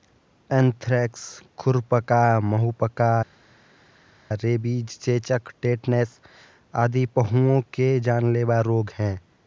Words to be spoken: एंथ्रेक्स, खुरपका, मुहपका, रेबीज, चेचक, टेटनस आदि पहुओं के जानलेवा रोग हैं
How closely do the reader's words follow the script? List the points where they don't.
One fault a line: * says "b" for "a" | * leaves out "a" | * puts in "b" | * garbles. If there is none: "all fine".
all fine